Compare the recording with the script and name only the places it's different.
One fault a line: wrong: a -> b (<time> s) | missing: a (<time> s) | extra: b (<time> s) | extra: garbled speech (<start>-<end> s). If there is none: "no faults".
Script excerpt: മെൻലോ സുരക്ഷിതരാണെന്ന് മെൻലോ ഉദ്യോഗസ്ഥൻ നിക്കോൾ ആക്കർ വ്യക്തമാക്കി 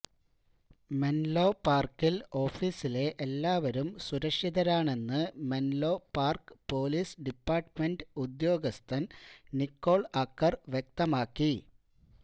extra: പാർക്കിൽ ഓഫീസിലെ എല്ലാവരും (1.6 s)
extra: പാർക്ക് പൊലീസ് ഡിപ്പാർട്ട്മെന്റ് (6.2 s)